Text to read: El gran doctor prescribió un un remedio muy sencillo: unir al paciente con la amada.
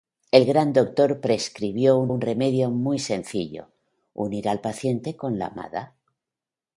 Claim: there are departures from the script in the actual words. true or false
false